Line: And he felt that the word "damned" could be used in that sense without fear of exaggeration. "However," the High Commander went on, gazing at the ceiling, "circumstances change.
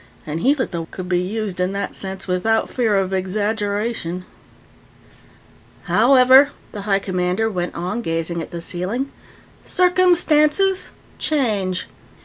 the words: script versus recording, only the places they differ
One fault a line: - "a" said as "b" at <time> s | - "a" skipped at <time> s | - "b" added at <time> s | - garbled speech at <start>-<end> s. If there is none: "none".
- "felt" skipped at 0.6 s
- "word damned" skipped at 0.8 s